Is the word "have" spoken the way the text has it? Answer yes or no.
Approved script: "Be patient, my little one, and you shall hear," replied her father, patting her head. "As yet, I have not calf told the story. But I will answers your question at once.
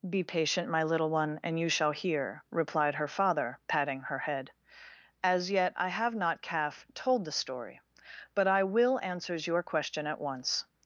yes